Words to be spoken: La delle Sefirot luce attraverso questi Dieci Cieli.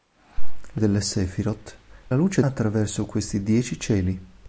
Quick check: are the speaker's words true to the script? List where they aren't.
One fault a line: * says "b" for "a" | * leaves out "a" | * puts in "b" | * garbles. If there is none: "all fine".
all fine